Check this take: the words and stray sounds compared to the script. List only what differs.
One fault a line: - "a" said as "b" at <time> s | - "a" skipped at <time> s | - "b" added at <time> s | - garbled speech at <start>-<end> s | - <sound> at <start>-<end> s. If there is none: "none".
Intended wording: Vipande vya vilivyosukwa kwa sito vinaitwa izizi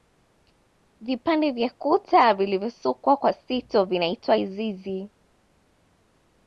- "kuta" added at 1.7 s